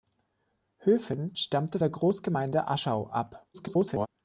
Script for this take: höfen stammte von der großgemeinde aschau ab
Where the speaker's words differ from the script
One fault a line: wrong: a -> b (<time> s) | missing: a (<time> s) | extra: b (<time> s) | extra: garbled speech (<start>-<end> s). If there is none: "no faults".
missing: von (1.8 s)
extra: garbled speech (3.5-4.1 s)